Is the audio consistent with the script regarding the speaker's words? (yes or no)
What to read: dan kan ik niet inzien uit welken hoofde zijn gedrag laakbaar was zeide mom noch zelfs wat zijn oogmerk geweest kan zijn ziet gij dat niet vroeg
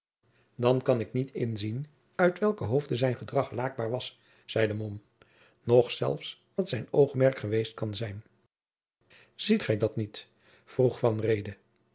yes